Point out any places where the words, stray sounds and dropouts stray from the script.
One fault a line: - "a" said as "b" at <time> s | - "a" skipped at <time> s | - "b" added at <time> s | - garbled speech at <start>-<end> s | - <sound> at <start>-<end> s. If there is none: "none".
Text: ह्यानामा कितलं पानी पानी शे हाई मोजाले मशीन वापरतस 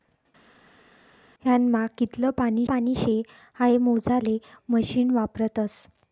none